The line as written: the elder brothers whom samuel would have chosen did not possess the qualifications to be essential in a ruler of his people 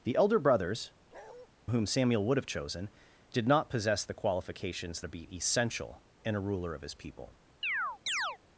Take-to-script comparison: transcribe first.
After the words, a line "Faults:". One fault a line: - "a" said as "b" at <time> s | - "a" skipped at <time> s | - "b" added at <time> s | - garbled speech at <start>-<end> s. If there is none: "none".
the elder brothers whom samuel would have chosen did not possess the qualifications to be essential in a ruler of his people
Faults:
none